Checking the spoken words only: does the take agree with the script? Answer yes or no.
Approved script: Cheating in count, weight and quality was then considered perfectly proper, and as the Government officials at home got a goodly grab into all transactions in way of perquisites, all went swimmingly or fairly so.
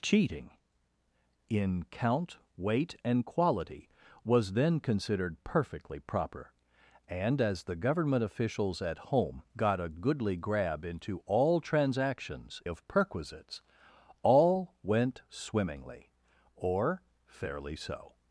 no